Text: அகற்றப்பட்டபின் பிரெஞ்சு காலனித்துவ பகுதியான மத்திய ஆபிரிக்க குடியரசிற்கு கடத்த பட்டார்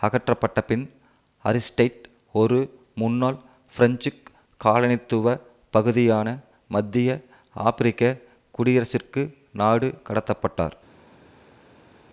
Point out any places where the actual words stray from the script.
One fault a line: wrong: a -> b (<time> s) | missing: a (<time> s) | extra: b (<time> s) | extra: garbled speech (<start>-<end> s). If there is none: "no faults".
extra: அரிஸ்டைட் ஒரு முன்னாள் (1.4 s)
extra: நாடு (9.5 s)